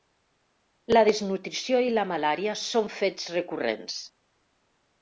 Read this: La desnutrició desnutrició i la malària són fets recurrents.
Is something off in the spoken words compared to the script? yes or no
yes